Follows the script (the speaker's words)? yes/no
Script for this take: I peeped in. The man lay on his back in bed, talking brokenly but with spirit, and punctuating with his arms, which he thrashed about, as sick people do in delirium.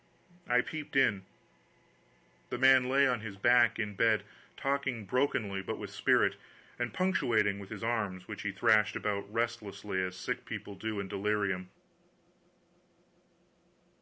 no